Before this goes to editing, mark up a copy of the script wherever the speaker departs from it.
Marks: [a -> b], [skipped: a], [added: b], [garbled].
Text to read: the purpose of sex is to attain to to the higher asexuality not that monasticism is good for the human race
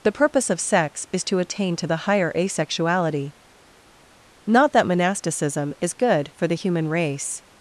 the purpose of sex is to attain to [skipped: to] the higher asexuality not that monasticism is good for the human race